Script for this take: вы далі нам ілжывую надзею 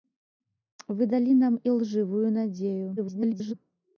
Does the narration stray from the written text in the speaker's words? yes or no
yes